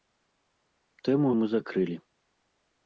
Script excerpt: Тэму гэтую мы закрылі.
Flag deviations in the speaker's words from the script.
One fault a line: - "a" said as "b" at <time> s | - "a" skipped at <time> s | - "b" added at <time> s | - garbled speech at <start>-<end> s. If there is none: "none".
- "гэтую" skipped at 1.3 s